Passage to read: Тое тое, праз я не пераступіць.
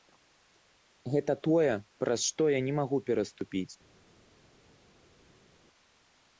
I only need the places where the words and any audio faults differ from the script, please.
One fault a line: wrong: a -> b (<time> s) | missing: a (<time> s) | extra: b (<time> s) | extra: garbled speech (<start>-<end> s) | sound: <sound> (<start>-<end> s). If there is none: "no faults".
wrong: Тое -> Гэта (1.1 s)
extra: што (2.3 s)
extra: магу (2.8 s)